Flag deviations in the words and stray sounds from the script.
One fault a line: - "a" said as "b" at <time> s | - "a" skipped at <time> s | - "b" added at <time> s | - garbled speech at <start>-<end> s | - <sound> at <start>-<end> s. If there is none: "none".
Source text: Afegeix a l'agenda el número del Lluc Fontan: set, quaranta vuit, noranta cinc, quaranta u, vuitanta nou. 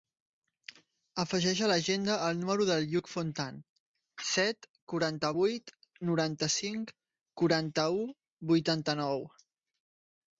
none